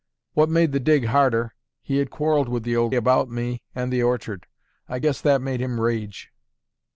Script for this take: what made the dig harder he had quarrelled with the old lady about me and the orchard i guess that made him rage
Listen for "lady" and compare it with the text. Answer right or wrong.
wrong